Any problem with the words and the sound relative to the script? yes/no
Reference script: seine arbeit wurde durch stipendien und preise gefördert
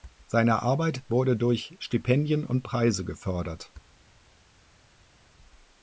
no